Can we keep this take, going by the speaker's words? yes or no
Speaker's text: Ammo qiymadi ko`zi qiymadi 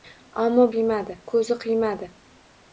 yes